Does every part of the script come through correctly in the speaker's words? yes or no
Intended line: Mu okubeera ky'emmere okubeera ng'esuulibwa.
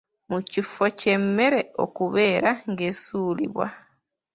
no